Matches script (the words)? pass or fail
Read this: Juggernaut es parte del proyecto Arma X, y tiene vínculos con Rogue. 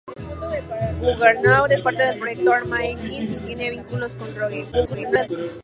fail